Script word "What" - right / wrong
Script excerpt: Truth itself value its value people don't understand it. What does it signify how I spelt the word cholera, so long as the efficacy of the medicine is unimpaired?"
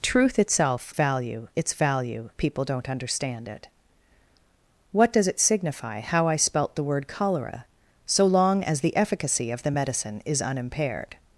right